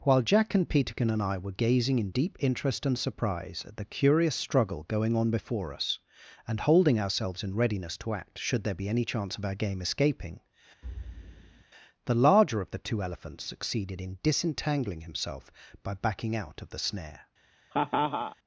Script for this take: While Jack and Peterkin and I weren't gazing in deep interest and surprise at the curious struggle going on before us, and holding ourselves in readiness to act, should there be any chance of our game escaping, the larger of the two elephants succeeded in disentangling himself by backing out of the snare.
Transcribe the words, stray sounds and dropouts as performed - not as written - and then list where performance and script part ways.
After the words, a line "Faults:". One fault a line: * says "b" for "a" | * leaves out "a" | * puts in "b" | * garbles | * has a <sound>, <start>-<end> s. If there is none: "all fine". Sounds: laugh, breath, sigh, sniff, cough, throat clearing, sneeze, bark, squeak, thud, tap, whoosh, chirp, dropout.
While Jack and Peterkin and I were gazing in deep interest and surprise at the curious struggle going on before us, and holding ourselves in readiness to act, should there be any chance of our game escaping, the larger of the two elephants succeeded in disentangling himself by backing out of the snare.
Faults:
* says "were" for "weren't"
* has a thud, 10.8-11.6 s
* has a laugh, 17.7-18.4 s